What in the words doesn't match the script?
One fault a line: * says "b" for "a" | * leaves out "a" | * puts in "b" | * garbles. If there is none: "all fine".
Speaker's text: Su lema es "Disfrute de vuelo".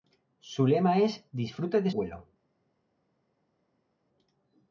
all fine